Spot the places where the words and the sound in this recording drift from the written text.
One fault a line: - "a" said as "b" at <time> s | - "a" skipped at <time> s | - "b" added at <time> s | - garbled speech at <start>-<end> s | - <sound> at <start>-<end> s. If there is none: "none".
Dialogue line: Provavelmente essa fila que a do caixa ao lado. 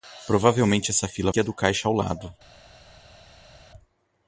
none